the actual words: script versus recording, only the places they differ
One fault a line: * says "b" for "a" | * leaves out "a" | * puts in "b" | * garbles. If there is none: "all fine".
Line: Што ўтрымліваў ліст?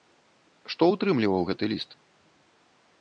* puts in "гэты"